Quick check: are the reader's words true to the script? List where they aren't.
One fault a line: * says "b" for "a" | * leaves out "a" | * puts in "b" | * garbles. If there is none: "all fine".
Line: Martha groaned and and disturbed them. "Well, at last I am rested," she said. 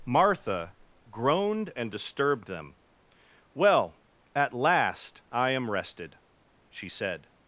* leaves out "and"